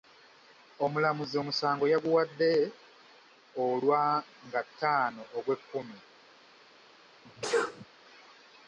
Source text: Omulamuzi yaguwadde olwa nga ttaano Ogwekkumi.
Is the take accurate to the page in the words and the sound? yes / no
no